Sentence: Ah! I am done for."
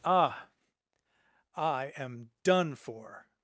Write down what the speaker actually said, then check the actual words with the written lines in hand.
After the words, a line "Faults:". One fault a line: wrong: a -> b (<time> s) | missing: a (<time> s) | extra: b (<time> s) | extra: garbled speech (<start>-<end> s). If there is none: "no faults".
Ah! I am done for."
Faults:
no faults